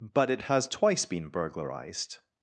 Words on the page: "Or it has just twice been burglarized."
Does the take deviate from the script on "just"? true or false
true